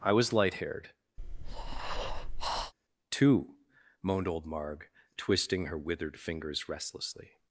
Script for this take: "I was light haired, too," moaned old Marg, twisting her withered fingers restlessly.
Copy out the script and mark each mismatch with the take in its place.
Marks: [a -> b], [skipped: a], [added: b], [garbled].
"I was light haired, too," moaned old Marg, twisting her withered fingers restlessly.